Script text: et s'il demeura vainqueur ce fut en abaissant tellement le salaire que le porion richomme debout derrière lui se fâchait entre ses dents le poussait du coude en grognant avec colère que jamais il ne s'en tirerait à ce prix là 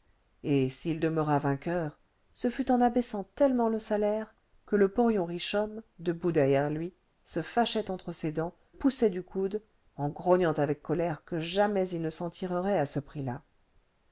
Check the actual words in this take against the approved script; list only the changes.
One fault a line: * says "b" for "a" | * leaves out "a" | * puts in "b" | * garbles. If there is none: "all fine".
* leaves out "le"